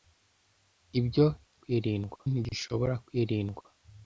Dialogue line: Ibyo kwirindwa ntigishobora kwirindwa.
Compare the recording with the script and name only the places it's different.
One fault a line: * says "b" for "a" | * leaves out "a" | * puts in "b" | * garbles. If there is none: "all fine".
all fine